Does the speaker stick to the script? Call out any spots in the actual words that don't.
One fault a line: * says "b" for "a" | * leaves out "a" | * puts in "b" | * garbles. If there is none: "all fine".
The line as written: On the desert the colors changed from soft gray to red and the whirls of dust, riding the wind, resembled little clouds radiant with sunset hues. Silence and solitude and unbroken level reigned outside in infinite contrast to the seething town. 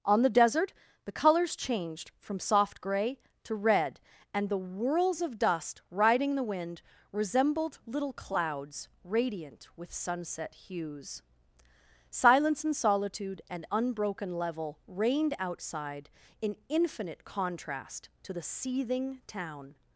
all fine